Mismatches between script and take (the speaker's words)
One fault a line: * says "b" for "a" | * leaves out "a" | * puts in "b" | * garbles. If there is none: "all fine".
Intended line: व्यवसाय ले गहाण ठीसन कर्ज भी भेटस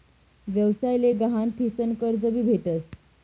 all fine